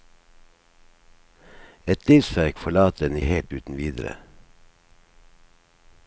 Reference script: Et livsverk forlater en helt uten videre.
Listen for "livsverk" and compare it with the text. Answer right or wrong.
right